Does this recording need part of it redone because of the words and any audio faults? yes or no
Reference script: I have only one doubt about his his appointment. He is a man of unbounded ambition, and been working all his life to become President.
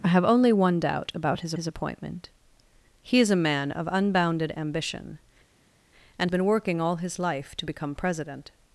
no